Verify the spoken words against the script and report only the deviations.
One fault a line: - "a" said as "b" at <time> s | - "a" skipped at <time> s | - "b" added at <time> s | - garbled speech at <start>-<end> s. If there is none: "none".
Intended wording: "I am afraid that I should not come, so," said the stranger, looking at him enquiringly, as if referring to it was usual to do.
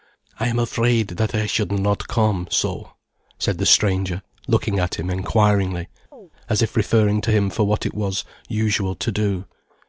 - "him for what" added at 7.3 s